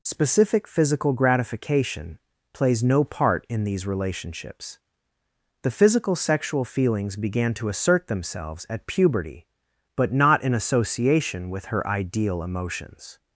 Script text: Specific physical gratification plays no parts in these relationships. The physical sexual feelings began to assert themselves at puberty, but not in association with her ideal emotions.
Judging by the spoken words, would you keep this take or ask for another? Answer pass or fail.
fail